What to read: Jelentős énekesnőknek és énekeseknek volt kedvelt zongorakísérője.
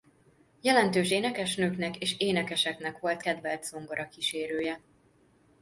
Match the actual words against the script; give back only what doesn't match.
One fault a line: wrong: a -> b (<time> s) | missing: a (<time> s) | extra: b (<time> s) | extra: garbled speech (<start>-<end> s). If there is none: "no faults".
no faults